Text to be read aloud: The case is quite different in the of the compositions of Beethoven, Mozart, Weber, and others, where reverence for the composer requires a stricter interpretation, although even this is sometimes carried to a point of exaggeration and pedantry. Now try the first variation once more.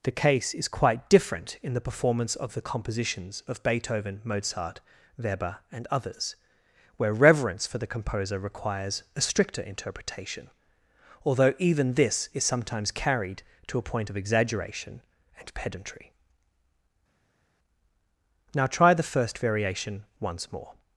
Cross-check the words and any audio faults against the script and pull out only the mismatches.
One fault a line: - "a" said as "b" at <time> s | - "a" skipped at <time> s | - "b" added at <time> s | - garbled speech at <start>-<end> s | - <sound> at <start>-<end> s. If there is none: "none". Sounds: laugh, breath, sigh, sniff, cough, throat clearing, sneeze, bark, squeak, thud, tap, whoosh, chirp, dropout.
- "performance" added at 1.9 s